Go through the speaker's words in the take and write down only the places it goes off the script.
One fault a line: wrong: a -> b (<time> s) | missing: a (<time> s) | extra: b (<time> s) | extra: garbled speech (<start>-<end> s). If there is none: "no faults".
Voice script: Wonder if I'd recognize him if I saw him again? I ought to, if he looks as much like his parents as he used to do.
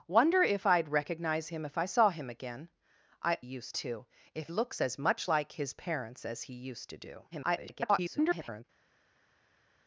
wrong: ought -> used (3.4 s)
missing: he (4.5 s)
extra: garbled speech (7.3-8.6 s)